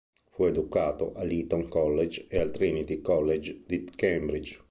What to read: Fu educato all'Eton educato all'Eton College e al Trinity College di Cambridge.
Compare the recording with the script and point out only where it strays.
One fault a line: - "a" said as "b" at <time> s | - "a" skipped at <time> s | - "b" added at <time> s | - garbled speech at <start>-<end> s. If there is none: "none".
- "educato all'Eton" skipped at 1.7 s